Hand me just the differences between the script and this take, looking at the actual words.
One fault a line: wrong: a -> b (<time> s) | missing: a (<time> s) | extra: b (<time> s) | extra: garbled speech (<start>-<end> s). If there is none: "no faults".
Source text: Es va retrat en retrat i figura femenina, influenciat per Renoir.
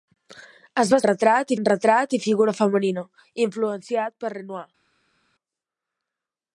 no faults